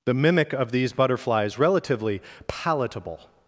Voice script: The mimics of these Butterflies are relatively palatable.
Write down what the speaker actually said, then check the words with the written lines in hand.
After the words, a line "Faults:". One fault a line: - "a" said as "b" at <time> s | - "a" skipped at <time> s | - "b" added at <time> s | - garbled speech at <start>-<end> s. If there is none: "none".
The mimic of these Butterflies relatively palatable.
Faults:
- "mimics" said as "mimic" at 0.1 s
- "are" skipped at 1.6 s